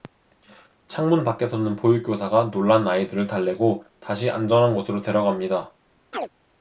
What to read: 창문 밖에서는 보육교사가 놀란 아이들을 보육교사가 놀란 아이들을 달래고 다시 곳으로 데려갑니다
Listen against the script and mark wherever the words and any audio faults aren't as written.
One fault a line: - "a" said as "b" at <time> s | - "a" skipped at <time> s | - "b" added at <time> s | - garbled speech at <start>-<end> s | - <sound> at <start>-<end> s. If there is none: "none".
- "보육교사가 놀란 아이들을" skipped at 3.2 s
- "안전한" added at 4.3 s
- chirp at 6.1-6.3 s